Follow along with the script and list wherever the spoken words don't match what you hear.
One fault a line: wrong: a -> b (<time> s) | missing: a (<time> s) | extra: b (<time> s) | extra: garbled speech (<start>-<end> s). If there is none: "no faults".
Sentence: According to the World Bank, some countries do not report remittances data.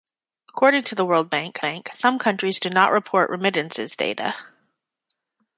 extra: Bank (1.6 s)